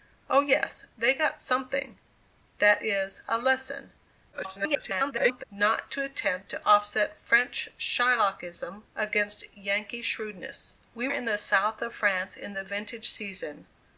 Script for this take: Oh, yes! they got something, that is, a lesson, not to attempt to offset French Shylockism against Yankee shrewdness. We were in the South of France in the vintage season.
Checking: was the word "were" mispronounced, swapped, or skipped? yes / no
yes